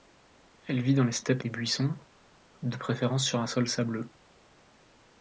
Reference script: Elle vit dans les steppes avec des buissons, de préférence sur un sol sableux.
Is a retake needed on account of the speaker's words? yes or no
yes